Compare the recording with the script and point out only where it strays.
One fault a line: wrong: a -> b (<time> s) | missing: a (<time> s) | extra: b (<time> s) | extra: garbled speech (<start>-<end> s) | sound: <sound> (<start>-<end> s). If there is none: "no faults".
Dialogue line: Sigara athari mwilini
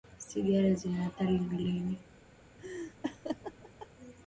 extra: zina (0.7 s)
sound: laugh (2.6-3.9 s)